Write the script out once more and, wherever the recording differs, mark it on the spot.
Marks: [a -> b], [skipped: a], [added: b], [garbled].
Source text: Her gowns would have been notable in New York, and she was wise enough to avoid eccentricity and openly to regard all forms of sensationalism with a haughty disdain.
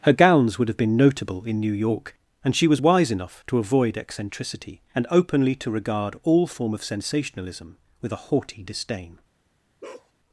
Her gowns would have been notable in New York, and she was wise enough to avoid eccentricity and openly to regard all [forms -> form] of sensationalism with a haughty disdain.